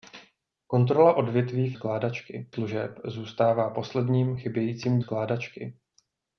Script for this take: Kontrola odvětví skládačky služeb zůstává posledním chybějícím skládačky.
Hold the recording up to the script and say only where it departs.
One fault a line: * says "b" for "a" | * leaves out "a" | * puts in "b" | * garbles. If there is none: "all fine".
all fine